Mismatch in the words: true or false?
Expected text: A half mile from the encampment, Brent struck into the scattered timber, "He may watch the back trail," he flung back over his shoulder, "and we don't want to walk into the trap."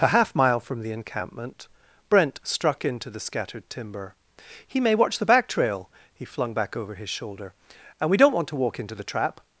false